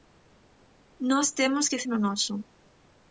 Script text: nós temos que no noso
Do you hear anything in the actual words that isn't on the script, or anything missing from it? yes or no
no